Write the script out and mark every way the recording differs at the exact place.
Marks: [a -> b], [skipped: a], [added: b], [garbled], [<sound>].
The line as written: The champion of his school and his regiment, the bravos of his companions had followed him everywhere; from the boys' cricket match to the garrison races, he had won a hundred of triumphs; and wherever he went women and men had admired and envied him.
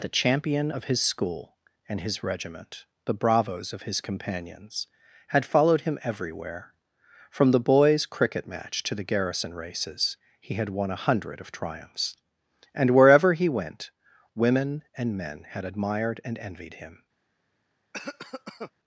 The champion of his school and his regiment, the bravos of his companions had followed him everywhere; from the boys' cricket match to the garrison races, he had won a hundred of triumphs; and wherever he went women and men had admired and envied him. [cough]